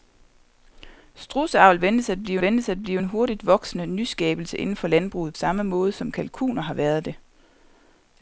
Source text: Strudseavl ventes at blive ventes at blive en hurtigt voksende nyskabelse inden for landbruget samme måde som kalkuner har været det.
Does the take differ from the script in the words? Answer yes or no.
no